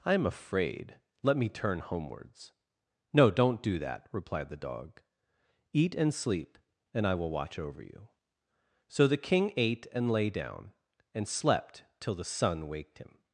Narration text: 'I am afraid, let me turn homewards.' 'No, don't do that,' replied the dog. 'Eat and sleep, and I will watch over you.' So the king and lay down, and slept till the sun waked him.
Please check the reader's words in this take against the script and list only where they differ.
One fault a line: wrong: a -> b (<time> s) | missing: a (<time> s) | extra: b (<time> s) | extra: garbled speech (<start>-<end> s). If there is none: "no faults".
extra: ate (9.6 s)